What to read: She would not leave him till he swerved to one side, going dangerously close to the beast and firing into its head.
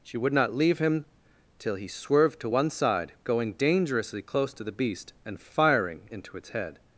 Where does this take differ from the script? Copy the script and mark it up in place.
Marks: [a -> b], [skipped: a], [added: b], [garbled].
She would not leave him till he swerved to one side, going dangerously close to the beast and firing into its head.